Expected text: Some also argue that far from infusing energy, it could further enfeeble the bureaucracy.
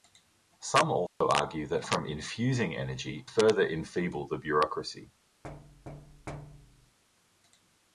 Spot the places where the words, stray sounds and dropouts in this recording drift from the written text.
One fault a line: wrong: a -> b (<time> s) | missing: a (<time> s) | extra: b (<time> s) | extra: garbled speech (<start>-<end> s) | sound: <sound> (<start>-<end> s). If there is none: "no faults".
sound: dropout (1.1-1.2 s)
missing: far (1.8 s)
missing: it could (3.3 s)
sound: thud (5.4-7.0 s)